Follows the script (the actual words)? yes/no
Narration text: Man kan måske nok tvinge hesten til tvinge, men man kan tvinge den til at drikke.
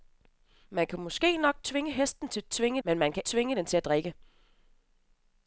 yes